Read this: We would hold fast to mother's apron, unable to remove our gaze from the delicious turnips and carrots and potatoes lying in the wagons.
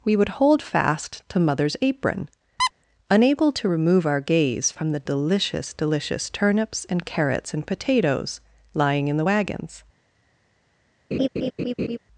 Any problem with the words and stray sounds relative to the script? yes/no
yes